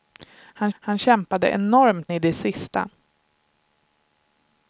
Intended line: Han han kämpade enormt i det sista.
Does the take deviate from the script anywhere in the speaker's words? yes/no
no